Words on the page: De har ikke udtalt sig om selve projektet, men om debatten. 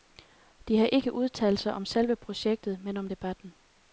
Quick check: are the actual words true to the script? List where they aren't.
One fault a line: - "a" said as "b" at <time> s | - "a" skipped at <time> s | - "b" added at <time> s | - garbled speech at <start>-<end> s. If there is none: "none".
none